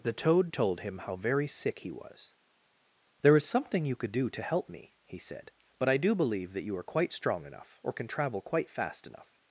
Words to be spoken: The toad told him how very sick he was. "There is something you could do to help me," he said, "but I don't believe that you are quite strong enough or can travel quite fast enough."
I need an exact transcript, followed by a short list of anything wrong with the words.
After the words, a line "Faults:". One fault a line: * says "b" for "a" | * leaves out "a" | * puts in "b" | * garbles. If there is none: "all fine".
The toad told him how very sick he was. "There is something you could do to help me," he said, "but I do believe that you are quite strong enough or can travel quite fast enough."
Faults:
* says "do" for "don't"